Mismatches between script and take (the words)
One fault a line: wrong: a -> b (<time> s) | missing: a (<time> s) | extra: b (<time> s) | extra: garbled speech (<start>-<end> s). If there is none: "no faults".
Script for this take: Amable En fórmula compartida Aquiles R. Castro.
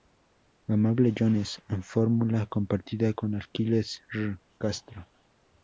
extra: Jones (1.1 s)
extra: con (3.1 s)